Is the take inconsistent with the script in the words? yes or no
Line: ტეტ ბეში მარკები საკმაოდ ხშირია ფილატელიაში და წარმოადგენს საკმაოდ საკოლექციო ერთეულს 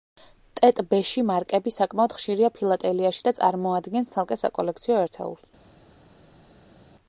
yes